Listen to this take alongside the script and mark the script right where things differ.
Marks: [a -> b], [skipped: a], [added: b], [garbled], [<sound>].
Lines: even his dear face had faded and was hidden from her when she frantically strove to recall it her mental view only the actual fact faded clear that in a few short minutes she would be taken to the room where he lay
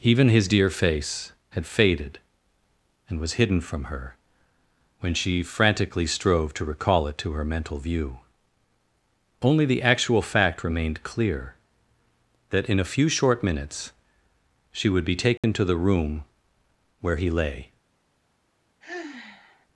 even his dear face had faded and was hidden from her when she frantically strove to recall it [added: to] her mental view only the actual fact [faded -> remained] clear that in a few short minutes she would be taken [dropout] to the room where he lay [sigh]